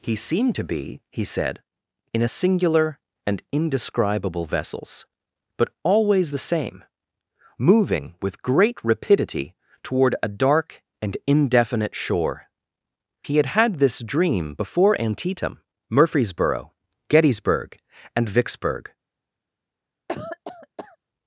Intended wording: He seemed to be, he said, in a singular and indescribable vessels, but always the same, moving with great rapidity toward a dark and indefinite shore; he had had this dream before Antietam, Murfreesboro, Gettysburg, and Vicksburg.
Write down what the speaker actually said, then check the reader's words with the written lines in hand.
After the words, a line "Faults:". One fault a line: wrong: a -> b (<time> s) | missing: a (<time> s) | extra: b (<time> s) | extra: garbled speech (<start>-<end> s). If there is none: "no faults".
He seemed to be, he said, in a singular and indescribable vessels, but always the same, moving with great rapidity toward a dark and indefinite shore; he had had this dream before Antietam, Murfreesboro, Gettysburg, and Vicksburg.
Faults:
no faults